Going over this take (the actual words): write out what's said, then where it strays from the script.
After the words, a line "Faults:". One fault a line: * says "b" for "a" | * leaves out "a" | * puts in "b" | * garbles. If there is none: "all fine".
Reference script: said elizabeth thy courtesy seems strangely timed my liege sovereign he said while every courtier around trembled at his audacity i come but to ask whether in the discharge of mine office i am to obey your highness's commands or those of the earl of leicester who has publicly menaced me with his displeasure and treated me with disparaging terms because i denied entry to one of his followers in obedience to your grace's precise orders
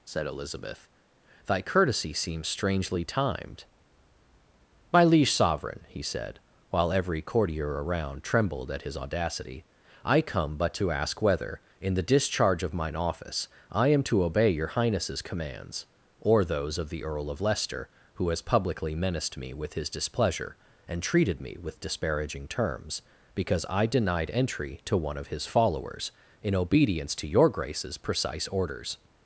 said elizabeth thy courtesy seems strangely timed my liege sovereign he said while every courtier around trembled at his audacity i come but to ask whether in the discharge of mine office i am to obey your highness's commands or those of the earl of leicester who has publicly menaced me with his displeasure and treated me with disparaging terms because i denied entry to one of his followers in obedience to your grace's precise orders
Faults:
all fine